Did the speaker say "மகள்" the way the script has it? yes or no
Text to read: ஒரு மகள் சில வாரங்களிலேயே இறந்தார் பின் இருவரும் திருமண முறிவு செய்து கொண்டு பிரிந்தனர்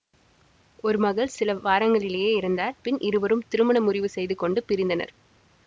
yes